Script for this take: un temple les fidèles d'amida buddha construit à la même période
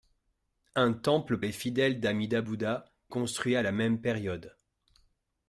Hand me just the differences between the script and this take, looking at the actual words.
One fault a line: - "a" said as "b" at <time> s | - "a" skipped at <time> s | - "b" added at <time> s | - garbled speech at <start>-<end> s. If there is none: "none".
none